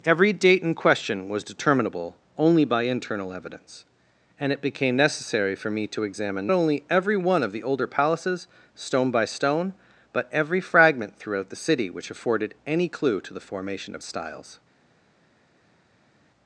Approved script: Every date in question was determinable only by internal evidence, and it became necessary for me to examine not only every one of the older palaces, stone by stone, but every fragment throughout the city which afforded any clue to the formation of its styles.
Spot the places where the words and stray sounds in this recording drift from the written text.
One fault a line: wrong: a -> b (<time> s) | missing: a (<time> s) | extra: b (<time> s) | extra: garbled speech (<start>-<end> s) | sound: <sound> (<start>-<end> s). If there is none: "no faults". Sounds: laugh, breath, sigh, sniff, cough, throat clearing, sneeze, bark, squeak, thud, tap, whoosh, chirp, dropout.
missing: not (6.5 s)
missing: its (14.0 s)